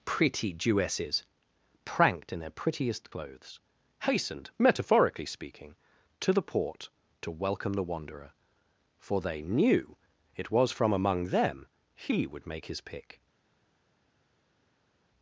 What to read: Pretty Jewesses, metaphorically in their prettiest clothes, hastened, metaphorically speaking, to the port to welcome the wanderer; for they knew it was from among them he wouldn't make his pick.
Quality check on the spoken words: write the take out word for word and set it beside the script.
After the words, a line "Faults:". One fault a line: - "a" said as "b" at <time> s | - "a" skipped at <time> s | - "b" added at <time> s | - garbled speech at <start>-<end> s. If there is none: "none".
Pretty Jewesses, pranked in their prettiest clothes, hastened, metaphorically speaking, to the port to welcome the wanderer; for they knew it was from among them he would make his pick.
Faults:
- "metaphorically" said as "pranked" at 1.9 s
- "wouldn't" said as "would" at 12.3 s